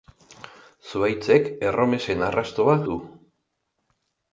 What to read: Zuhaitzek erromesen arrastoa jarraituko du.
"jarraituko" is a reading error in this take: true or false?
true